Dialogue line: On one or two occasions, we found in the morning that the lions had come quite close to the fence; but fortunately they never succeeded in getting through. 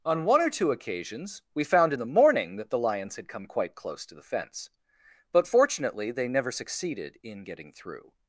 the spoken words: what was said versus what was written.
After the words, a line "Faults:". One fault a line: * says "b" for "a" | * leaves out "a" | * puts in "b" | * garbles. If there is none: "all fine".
On one or two occasions, we found in the morning that the lions had come quite close to the fence; but fortunately they never succeeded in getting through.
Faults:
all fine